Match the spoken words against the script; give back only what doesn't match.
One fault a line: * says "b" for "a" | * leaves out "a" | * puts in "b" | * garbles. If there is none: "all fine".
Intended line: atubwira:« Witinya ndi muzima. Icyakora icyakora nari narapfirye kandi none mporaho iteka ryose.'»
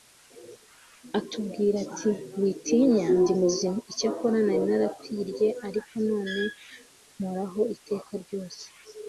* puts in "ati"
* leaves out "icyakora"
* says "ariko" for "kandi"